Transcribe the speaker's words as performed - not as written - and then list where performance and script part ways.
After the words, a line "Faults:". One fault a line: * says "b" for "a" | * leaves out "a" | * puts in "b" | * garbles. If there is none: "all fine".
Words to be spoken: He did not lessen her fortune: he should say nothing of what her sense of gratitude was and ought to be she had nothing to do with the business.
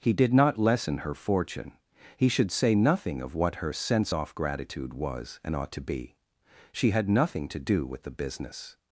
He did not lessen her fortune: he should say nothing of what her sense off gratitude was and ought to be she had nothing to do with the business.
Faults:
* says "off" for "of"